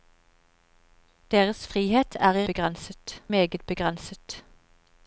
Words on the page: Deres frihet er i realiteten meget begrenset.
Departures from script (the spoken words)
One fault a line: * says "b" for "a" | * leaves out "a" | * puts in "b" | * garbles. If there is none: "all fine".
* says "begrenset" for "realiteten"